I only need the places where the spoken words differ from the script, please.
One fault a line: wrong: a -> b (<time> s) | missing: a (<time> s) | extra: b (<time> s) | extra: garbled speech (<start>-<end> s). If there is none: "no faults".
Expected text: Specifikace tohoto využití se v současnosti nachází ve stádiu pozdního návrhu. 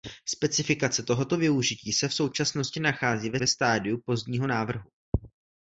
extra: ve (3.4 s)